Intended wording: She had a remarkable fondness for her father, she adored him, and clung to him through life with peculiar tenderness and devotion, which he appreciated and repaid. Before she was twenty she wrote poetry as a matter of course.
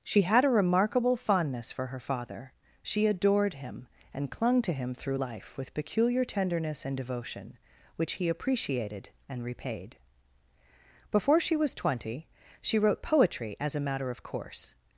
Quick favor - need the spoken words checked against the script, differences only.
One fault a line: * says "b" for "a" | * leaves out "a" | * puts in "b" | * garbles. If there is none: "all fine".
all fine